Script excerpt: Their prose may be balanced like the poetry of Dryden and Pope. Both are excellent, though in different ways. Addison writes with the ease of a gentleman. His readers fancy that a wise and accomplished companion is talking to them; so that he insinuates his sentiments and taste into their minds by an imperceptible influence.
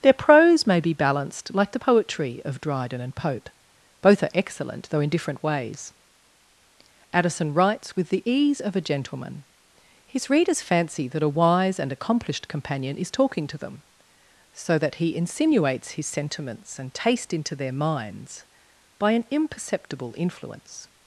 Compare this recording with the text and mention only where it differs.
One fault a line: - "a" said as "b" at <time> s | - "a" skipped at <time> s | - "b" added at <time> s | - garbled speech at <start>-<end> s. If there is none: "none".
none